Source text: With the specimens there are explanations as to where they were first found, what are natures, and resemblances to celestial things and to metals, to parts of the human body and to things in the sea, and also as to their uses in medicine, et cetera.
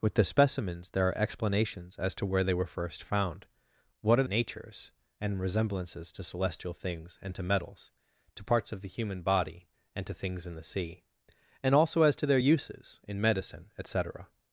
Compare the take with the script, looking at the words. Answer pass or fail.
pass